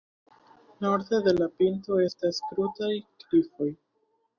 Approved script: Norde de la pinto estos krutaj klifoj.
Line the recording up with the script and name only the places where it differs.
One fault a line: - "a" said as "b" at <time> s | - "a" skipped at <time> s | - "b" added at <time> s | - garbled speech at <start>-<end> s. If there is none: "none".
- "estos" said as "estas" at 2.1 s